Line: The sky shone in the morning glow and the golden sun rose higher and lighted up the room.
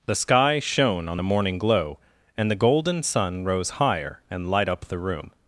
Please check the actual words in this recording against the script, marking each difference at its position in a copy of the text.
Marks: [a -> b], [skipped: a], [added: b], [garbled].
The sky shone [in -> on] the morning glow and the golden sun rose higher and [lighted -> light] up the room.